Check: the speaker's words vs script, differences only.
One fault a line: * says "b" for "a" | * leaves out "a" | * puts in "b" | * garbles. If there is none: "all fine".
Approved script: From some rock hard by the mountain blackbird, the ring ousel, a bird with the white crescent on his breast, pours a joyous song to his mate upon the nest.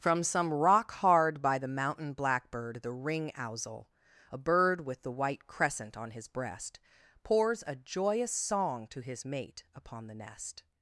all fine